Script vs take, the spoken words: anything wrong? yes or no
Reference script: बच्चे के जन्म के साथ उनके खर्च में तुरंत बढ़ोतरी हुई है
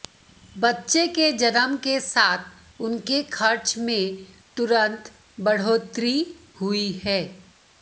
no